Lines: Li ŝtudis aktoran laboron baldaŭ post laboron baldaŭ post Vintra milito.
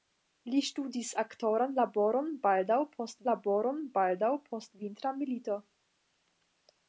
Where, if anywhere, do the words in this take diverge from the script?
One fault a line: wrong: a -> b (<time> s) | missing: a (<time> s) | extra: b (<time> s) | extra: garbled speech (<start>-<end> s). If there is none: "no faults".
no faults